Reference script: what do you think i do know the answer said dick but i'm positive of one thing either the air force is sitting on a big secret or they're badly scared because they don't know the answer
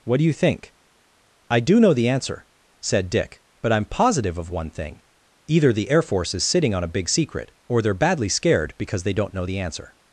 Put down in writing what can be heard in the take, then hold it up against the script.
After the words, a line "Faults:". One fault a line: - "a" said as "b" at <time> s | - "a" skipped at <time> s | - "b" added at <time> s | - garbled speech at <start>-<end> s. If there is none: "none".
what do you think i do know the answer said dick but i'm positive of one thing either the air force is sitting on a big secret or they're badly scared because they don't know the answer
Faults:
none